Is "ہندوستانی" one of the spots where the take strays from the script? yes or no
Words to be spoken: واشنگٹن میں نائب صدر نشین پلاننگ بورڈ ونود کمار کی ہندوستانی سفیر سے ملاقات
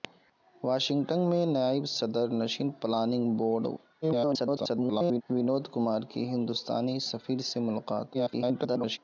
no